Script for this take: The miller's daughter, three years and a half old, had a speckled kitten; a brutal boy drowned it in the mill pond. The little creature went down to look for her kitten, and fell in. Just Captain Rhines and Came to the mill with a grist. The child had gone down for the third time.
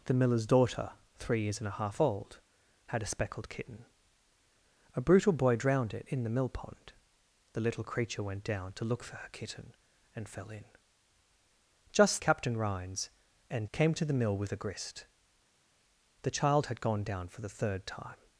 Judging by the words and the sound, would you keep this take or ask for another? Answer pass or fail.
pass